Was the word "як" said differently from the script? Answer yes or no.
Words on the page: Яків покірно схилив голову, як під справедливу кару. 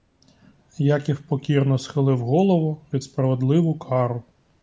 yes